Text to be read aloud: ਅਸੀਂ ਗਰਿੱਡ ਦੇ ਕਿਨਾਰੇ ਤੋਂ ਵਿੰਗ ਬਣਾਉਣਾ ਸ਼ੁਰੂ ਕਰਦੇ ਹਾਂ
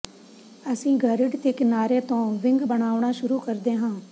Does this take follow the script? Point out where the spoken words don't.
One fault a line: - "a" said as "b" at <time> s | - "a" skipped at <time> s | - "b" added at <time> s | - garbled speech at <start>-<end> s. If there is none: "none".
none